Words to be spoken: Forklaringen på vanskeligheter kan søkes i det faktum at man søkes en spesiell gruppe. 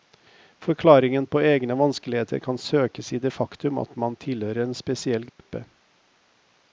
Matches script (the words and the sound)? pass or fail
fail